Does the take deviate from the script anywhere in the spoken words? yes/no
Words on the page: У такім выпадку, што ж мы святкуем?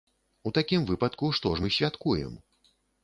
no